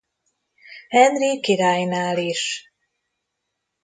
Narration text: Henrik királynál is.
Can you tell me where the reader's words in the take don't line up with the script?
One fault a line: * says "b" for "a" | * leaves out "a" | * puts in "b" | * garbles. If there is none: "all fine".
all fine